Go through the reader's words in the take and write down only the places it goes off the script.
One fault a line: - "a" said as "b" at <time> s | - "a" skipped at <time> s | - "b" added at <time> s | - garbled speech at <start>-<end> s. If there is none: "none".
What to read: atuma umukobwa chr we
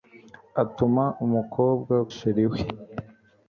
none